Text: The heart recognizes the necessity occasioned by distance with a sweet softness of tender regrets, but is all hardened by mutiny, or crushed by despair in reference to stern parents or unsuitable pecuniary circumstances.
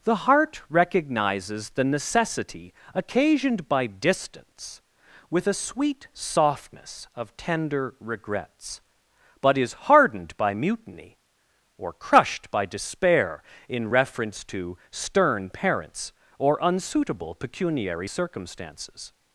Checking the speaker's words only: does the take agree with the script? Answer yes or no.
no